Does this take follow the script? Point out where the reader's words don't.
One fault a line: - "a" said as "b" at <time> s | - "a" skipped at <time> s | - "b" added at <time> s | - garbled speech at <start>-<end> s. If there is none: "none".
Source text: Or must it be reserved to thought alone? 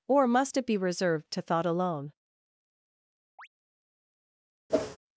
none